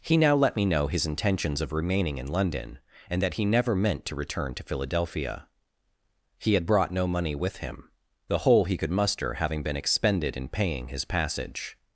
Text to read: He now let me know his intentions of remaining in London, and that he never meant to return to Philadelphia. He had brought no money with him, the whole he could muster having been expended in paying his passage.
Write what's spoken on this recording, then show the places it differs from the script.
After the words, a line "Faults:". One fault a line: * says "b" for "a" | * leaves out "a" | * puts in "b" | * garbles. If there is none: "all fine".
He now let me know his intentions of remaining in London, and that he never meant to return to Philadelphia. He had brought no money with him, the whole he could muster having been expended in paying his passage.
Faults:
all fine